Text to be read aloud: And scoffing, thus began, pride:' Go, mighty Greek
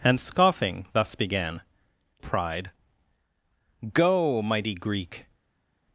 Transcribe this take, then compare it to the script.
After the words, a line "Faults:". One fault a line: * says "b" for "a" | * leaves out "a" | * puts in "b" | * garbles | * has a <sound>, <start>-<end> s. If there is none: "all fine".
And scoffing, thus began, pride:' Go, mighty Greek
Faults:
all fine